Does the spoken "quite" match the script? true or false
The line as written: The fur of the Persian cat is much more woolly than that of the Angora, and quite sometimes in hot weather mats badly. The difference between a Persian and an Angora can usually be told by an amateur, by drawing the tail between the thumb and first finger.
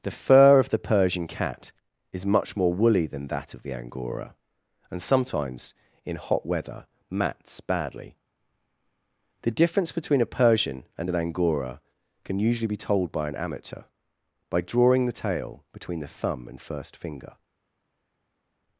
false